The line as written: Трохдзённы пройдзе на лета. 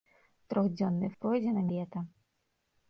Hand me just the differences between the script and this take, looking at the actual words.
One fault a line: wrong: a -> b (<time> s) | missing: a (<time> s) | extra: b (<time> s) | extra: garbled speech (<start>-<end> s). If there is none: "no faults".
no faults